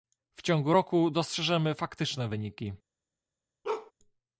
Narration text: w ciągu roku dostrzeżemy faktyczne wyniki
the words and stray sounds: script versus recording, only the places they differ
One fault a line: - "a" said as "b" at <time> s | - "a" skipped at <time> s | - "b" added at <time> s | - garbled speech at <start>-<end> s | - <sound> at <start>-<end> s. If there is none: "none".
- bark at 3.6-3.9 s